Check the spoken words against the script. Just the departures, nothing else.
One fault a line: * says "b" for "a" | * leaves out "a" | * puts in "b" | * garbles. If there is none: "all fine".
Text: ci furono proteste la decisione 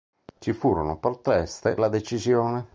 all fine